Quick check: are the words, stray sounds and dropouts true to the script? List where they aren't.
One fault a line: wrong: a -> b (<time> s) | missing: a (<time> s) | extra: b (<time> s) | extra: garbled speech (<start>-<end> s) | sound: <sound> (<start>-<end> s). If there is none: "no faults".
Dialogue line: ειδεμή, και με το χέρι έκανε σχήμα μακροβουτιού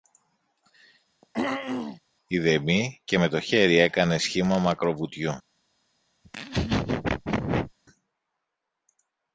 sound: throat clearing (1.2-2.0 s)
sound: laugh (6.2-7.7 s)